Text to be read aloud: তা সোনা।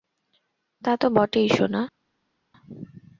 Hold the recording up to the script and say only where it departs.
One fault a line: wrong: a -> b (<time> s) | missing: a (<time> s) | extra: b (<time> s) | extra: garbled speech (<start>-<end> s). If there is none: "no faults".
extra: তো বটেই (0.9 s)